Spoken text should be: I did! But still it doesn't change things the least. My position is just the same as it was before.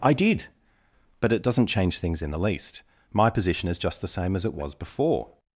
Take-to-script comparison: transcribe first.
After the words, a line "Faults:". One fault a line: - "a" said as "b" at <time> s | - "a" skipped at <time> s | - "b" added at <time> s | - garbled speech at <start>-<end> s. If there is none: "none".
I did! But it doesn't change things in the least. My position is just the same as it was before.
Faults:
- "still" skipped at 1.3 s
- "in" added at 2.2 s